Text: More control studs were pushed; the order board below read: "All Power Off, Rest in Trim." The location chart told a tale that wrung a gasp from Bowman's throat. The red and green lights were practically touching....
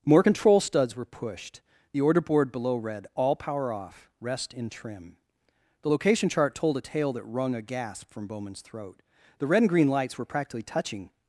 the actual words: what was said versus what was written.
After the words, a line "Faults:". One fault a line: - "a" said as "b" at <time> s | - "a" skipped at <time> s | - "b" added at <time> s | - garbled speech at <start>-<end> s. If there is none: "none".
More control studs were pushed; the order board below read: "All Power Off, Rest in Trim." The location chart told a tale that wrung a gasp from Bowman's throat. The red and green lights were practically touching....
Faults:
none